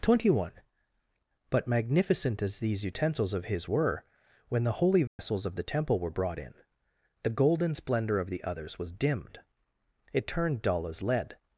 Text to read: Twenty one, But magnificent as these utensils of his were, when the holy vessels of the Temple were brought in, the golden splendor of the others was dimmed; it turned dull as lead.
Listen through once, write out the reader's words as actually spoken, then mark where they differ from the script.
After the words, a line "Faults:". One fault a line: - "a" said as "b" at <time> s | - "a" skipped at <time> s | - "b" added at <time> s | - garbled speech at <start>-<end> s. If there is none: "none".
Twenty one, But magnificent as these utensils of his were, when the holy vessels of the Temple were brought in, the golden splendor of the others was dimmed; it turned dull as lead.
Faults:
none